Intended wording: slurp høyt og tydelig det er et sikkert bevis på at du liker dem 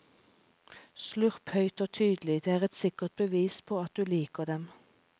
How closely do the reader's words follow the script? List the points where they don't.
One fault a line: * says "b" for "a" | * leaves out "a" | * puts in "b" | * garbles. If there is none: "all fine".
all fine